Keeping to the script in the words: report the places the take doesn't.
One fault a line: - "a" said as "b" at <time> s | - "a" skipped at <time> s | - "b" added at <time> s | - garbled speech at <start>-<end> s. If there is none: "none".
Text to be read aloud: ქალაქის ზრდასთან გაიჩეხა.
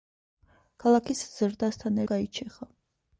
none